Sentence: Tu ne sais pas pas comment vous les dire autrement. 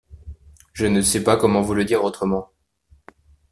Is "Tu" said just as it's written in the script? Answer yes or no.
no